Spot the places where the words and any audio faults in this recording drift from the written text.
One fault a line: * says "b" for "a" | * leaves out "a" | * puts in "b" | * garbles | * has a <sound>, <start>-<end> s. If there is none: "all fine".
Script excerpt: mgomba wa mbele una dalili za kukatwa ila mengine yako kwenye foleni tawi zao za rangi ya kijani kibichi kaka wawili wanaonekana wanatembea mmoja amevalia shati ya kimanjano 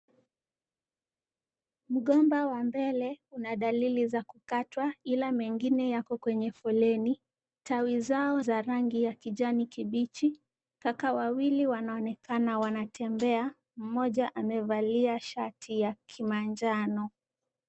all fine